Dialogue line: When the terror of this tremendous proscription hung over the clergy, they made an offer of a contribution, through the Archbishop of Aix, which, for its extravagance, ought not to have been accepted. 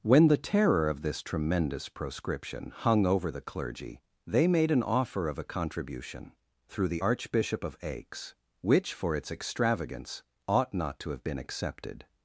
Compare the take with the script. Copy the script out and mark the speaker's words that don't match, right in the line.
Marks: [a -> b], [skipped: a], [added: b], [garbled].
When the terror of this tremendous proscription hung over the clergy, they made an offer of a contribution, through the Archbishop of Aix, which, for its extravagance, ought not to have been accepted.